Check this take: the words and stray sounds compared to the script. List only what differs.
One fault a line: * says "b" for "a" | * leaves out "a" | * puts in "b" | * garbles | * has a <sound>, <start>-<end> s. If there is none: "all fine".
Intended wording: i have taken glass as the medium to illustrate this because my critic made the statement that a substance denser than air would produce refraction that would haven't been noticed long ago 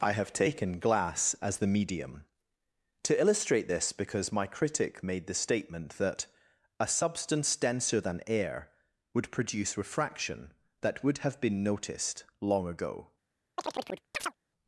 * says "have" for "haven't"
* has a chirp, 13.6-14.4 s